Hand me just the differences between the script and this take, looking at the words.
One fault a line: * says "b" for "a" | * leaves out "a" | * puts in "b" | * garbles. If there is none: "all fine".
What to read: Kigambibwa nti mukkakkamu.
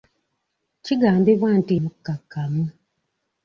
all fine